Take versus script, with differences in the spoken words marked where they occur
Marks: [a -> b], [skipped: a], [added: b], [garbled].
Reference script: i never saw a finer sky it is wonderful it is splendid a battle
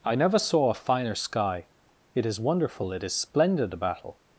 i never saw a finer sky it is wonderful it is splendid a battle